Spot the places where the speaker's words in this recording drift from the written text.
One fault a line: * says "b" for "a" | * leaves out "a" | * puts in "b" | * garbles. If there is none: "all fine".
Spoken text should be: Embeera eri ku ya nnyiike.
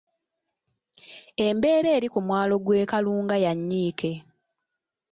* puts in "mwalo gw'e Kalunga"